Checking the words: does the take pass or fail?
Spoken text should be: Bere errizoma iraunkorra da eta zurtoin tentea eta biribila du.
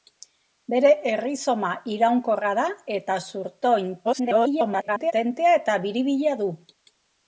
fail